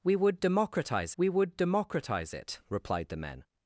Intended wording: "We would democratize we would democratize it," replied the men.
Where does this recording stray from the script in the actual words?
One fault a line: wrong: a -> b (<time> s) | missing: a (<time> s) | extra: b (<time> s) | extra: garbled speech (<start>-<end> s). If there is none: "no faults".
no faults